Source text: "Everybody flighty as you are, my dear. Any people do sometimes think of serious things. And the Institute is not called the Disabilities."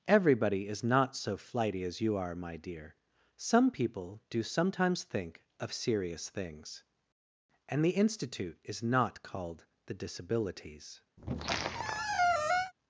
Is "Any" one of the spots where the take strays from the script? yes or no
yes